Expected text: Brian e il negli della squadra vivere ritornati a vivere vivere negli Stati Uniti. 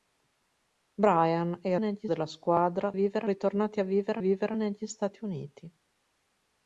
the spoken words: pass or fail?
pass